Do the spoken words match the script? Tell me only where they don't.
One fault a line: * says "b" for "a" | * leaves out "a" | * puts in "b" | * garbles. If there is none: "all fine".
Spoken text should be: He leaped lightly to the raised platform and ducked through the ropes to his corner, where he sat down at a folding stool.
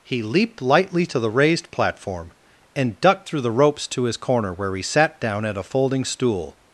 all fine